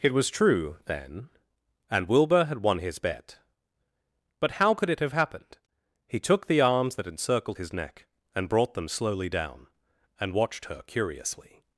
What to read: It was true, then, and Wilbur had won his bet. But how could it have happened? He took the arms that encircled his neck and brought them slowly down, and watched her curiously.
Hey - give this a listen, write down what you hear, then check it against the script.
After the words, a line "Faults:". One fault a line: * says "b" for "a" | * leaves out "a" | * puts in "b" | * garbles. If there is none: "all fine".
It was true, then, and Wilbur had won his bet. But how could it have happened? He took the arms that encircled his neck and brought them slowly down, and watched her curiously.
Faults:
all fine